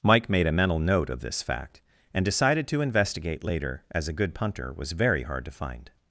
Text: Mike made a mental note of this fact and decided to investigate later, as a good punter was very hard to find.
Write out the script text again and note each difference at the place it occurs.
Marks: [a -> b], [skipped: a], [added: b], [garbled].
Mike made a mental note of this fact and decided to investigate later, as a good punter was very hard to find.